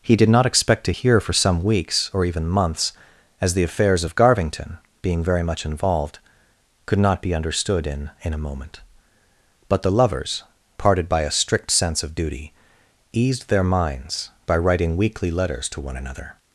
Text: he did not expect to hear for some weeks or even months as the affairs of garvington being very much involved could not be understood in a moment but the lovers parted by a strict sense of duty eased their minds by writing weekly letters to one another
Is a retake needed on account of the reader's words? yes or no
yes